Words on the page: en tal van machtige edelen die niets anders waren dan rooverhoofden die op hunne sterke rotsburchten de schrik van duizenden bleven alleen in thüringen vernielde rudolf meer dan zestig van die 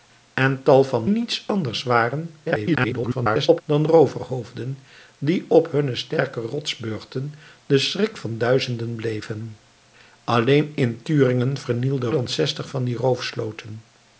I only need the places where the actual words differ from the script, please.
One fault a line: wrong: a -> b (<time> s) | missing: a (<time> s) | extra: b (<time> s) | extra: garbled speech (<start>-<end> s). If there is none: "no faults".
missing: machtige edelen die (1.1 s)
extra: garbled speech (2.4-3.6 s)
missing: rudolf meer (12.1 s)